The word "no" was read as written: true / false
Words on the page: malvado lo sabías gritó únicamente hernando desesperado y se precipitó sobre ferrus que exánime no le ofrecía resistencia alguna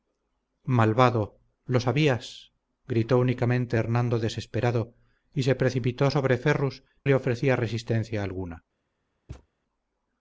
false